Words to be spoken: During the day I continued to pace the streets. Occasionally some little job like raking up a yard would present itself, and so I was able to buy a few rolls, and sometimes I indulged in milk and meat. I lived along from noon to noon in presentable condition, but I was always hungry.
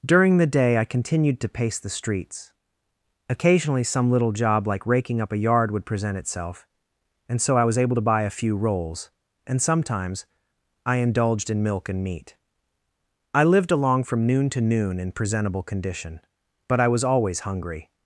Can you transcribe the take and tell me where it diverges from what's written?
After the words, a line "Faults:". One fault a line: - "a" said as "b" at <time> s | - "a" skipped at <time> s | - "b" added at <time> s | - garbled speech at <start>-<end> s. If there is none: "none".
During the day I continued to pace the streets. Occasionally some little job like raking up a yard would present itself, and so I was able to buy a few rolls, and sometimes I indulged in milk and meat. I lived along from noon to noon in presentable condition, but I was always hungry.
Faults:
none